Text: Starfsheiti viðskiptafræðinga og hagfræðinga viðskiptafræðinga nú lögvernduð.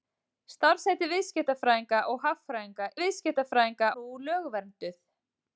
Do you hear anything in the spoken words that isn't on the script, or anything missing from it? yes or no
no